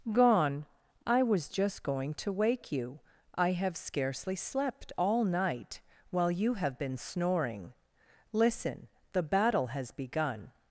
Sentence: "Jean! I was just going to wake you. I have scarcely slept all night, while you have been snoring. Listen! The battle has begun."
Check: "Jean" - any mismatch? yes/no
yes